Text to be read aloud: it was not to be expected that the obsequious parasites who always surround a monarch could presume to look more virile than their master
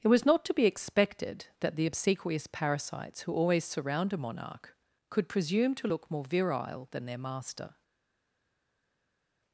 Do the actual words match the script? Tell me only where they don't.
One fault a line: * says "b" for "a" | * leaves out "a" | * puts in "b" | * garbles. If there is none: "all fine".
all fine